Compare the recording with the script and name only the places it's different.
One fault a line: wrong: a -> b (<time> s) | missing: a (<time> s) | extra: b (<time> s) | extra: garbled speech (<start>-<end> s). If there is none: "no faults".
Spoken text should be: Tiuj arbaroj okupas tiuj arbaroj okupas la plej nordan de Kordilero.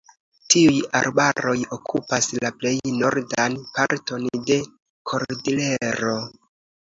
missing: tiuj arbaroj okupas (2.3 s)
extra: parton (3.8 s)